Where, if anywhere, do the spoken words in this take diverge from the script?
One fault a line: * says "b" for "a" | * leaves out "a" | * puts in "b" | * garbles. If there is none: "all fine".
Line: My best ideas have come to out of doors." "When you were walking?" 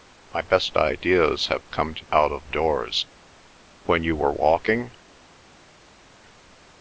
all fine